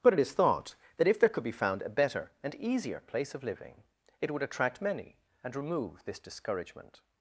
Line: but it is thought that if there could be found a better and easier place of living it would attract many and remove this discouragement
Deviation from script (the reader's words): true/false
false